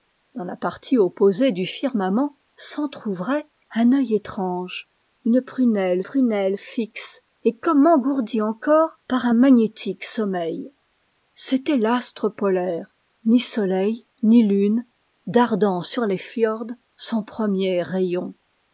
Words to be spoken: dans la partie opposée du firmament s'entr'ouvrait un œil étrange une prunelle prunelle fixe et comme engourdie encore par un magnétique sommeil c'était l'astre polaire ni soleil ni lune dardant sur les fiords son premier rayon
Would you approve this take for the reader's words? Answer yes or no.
yes